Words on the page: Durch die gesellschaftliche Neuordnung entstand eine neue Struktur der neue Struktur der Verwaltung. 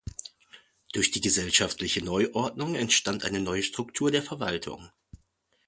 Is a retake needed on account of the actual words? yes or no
yes